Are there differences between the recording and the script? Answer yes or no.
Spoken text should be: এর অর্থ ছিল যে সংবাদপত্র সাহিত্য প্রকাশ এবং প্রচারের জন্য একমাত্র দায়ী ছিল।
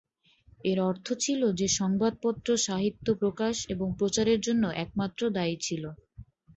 no